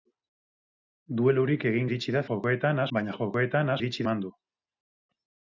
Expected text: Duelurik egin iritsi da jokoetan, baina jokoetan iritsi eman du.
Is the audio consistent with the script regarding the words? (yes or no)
yes